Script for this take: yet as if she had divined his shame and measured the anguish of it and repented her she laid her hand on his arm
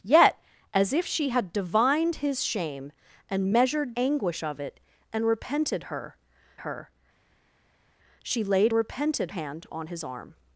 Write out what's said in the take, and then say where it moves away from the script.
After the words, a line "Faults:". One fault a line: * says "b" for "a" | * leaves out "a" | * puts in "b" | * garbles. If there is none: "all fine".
yet as if she had divined his shame and measured anguish of it and repented her her she laid repented hand on his arm
Faults:
* leaves out "the"
* puts in "her"
* says "repented" for "her"